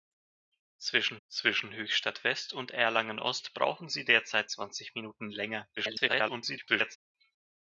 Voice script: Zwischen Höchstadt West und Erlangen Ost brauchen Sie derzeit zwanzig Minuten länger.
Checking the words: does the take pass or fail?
fail